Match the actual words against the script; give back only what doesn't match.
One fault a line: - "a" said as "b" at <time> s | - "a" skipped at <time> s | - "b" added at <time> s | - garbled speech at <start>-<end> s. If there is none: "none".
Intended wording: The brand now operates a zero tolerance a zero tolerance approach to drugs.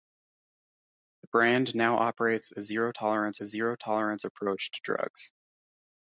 none